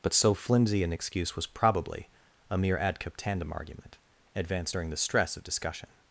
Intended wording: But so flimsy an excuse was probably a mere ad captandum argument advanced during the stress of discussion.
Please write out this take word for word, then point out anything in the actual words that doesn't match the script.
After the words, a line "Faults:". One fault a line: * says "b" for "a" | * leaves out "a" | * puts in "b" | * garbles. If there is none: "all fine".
But so flimsy an excuse was probably a mere ad captandum argument advanced during the stress of discussion.
Faults:
all fine